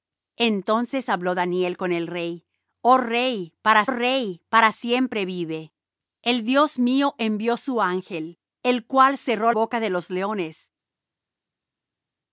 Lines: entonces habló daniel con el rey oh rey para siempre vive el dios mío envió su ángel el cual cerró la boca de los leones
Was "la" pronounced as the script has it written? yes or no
no